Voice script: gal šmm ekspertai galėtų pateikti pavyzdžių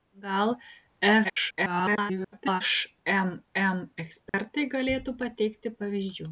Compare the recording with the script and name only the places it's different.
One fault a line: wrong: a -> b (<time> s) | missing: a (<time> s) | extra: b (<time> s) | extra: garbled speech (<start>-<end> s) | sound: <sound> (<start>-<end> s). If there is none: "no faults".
extra: garbled speech (1.2-2.6 s)
sound: dropout (4.3-4.3 s)